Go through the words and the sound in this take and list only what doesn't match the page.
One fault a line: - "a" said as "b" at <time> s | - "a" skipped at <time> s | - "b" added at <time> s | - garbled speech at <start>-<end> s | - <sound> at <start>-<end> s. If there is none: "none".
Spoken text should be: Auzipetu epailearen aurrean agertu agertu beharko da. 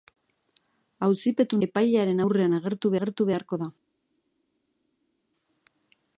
none